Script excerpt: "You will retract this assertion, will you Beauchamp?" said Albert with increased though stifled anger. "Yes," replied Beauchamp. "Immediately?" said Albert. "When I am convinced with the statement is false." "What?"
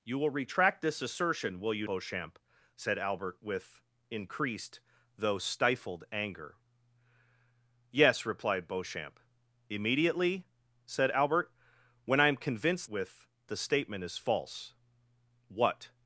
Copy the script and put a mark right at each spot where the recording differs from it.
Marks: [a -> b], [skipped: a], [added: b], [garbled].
"You will retract this assertion, will you Beauchamp?" said Albert with increased though stifled anger. "Yes," replied Beauchamp. "Immediately?" said Albert. "When I am convinced with the statement is false." "What?"